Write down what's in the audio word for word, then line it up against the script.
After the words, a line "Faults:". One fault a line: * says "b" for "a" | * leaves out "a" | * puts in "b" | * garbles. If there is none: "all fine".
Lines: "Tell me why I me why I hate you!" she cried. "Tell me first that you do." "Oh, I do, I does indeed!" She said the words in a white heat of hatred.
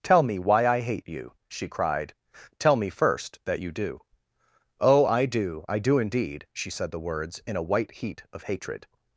"Tell me why I hate you!" she cried. "Tell me first that you do." "Oh, I do, I do indeed!" She said the words in a white heat of hatred.
Faults:
* leaves out "me why I"
* says "do" for "does"